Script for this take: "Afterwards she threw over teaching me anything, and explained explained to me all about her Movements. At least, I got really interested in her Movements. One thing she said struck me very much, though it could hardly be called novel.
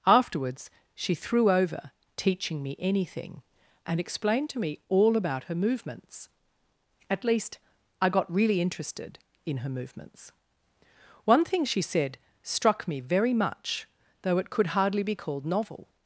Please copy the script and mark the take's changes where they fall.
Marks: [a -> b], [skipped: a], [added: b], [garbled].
"Afterwards she threw over teaching me anything, and explained [skipped: explained] to me all about her Movements. At least, I got really interested in her Movements. One thing she said struck me very much, though it could hardly be called novel.